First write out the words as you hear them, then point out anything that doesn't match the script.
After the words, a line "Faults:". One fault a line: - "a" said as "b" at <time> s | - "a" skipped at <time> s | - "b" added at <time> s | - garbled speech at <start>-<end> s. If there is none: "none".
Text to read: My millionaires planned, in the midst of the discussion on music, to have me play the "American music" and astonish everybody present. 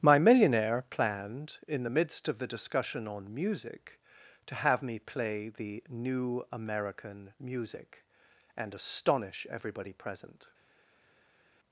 My millionaire planned, in the midst of the discussion on music, to have me play the "new American music" and astonish everybody present.
Faults:
- "millionaires" said as "millionaire" at 0.2 s
- "new" added at 5.9 s